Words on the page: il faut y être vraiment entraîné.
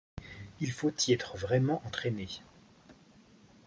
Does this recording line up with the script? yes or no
yes